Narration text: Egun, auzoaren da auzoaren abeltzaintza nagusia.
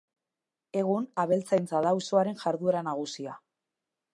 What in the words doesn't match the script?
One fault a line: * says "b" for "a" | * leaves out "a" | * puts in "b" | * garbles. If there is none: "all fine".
* says "abeltzaintza" for "auzoaren"
* says "jarduera" for "abeltzaintza"